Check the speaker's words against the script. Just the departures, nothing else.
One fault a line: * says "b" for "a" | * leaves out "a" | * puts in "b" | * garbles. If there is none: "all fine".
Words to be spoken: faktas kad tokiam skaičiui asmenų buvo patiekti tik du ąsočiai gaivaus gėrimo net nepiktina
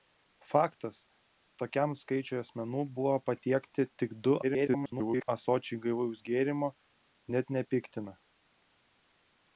* leaves out "kad"
* garbles